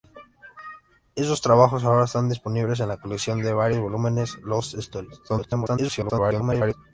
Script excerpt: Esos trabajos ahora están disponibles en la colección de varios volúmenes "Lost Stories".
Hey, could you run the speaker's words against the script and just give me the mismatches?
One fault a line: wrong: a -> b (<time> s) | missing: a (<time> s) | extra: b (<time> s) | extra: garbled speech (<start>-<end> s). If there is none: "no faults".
extra: garbled speech (5.3-6.7 s)